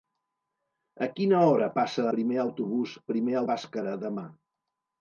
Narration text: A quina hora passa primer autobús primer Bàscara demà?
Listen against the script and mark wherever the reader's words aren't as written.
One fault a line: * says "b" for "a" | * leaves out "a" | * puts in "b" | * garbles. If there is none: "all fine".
all fine